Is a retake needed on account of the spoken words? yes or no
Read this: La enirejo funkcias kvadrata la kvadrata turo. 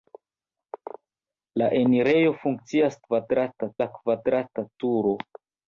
no